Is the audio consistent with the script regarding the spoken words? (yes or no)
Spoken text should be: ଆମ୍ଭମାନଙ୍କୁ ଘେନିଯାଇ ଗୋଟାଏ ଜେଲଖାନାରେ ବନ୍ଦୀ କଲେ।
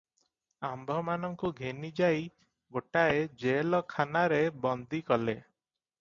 yes